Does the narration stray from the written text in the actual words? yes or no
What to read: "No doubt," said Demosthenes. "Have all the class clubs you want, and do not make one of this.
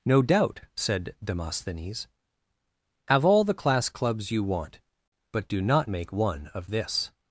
yes